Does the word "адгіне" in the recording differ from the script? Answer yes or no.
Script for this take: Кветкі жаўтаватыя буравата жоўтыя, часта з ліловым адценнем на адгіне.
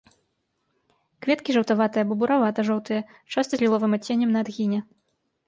no